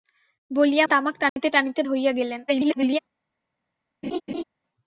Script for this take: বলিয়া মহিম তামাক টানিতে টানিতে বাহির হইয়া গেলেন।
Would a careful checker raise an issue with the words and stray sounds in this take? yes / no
yes